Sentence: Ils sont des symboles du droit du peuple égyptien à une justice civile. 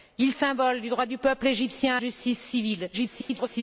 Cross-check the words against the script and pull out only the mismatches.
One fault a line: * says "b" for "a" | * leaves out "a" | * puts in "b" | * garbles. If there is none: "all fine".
* leaves out "sont des"
* leaves out "à une"
* garbles